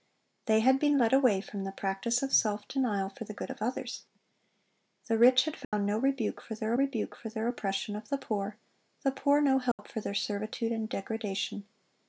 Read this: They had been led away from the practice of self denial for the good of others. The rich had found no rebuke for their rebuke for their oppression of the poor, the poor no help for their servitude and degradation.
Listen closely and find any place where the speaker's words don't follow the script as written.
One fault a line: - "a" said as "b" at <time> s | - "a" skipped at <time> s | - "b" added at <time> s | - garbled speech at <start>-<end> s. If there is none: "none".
none